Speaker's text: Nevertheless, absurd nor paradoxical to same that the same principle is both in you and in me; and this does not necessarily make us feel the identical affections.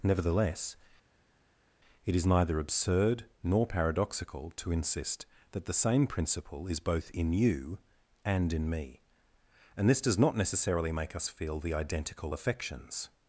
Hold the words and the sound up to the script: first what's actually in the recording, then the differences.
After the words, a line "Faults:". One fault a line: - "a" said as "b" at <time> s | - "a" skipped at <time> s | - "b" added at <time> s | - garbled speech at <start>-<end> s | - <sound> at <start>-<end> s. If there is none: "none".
Nevertheless, it is neither absurd nor paradoxical to insist that the same principle is both in you and in me; and this does not necessarily make us feel the identical affections.
Faults:
- "it is neither" added at 2.0 s
- "same" said as "insist" at 4.7 s